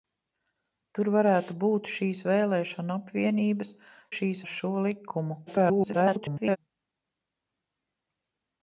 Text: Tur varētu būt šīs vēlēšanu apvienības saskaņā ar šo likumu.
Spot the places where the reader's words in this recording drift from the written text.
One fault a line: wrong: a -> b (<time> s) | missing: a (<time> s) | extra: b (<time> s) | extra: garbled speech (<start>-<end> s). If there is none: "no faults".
wrong: saskaņā -> šīs (4.2 s)
extra: garbled speech (5.5-6.6 s)